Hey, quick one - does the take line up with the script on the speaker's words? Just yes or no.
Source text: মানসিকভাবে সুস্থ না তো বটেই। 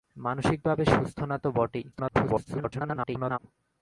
no